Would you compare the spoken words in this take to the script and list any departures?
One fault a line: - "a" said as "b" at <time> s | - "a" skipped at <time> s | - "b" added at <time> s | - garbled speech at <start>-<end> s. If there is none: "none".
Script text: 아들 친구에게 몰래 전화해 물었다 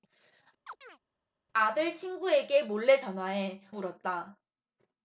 none